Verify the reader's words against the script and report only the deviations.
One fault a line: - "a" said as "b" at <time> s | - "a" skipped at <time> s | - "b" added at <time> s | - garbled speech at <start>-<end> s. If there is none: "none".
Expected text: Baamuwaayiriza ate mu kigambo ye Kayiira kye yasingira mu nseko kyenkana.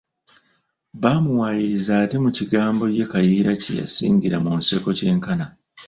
none